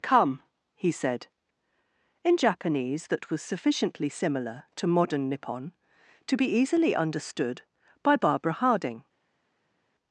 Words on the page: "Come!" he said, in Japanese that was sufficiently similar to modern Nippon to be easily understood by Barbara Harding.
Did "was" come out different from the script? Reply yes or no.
no